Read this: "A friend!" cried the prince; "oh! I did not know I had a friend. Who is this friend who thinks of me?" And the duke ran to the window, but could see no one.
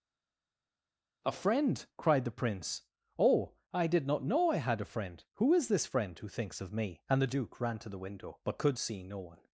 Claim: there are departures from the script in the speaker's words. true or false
false